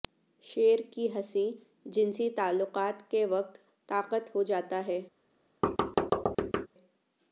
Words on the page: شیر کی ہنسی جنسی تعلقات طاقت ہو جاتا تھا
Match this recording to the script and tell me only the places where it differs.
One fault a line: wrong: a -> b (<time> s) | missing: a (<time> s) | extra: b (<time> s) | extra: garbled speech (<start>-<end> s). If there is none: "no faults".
extra: کے وقت (3.1 s)
wrong: تھا -> ہے (4.9 s)